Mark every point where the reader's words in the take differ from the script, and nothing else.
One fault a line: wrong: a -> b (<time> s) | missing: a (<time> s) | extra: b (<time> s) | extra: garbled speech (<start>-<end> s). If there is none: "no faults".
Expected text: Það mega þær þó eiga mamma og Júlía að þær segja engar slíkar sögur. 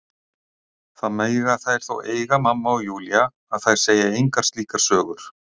no faults